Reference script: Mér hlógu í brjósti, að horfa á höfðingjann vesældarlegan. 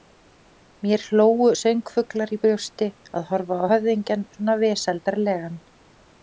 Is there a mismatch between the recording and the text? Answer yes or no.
yes